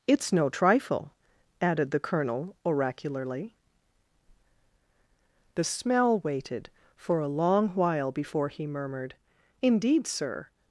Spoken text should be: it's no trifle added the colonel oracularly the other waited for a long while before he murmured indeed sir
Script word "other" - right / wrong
wrong